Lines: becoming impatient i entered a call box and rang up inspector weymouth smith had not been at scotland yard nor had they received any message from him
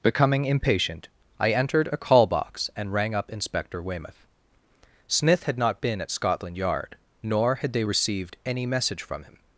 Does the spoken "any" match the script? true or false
true